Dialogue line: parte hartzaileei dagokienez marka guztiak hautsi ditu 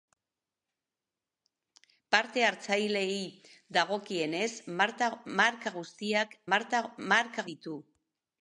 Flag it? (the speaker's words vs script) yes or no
yes